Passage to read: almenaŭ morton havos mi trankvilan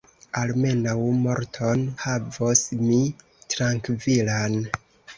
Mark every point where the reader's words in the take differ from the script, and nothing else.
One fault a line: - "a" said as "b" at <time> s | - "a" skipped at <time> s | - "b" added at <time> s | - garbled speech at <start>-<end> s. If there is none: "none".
none